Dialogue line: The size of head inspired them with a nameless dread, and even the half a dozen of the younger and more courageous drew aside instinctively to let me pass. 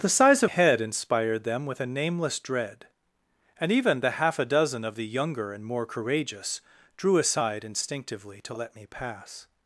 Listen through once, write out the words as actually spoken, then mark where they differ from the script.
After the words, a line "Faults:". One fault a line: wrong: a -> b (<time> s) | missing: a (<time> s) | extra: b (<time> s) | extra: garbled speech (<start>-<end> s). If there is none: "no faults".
The size of head inspired them with a nameless dread, and even the half a dozen of the younger and more courageous drew aside instinctively to let me pass.
Faults:
no faults